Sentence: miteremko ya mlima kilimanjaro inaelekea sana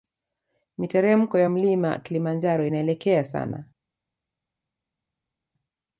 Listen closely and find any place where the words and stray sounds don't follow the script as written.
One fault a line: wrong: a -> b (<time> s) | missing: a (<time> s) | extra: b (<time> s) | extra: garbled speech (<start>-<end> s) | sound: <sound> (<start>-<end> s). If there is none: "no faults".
no faults